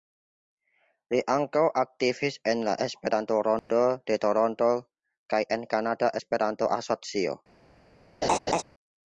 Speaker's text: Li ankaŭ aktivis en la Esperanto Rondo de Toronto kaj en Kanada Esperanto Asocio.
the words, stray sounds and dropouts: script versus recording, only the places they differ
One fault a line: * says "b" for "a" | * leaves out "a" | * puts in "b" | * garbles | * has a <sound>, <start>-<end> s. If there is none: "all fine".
* has a dropout, 3.6-3.7 s
* has a laugh, 8.2-8.6 s